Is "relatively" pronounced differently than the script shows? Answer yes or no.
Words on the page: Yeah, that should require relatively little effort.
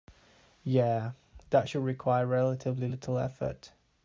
no